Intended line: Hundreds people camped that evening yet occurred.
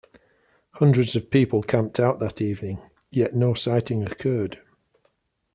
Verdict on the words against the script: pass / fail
fail